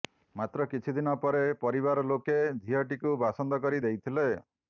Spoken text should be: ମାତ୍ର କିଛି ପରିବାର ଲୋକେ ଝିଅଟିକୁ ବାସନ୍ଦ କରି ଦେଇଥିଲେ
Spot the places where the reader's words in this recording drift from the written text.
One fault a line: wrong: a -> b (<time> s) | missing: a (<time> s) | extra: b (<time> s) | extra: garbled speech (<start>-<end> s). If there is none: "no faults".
extra: ଦିନ ପରେ (1.0 s)